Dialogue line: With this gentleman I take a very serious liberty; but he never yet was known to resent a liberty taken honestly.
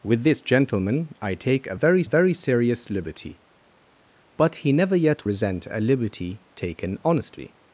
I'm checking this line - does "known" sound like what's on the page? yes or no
no